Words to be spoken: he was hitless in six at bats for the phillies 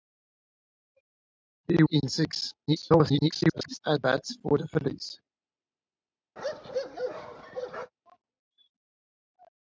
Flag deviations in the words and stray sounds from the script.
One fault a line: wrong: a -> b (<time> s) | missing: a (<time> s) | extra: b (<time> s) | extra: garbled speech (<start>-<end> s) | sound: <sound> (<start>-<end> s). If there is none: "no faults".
missing: was hitless (1.8 s)
extra: garbled speech (2.7-3.8 s)
sound: bark (6.4-7.9 s)